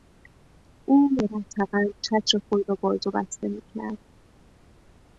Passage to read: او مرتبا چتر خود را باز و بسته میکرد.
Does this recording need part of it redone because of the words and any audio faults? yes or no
no